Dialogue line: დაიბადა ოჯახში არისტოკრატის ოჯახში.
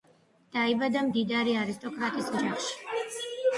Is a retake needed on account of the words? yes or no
yes